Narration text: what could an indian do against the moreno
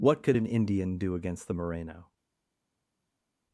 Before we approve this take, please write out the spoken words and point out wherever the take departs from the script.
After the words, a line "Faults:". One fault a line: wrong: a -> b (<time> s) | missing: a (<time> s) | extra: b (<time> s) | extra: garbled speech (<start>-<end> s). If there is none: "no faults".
what could an indian do against the moreno
Faults:
no faults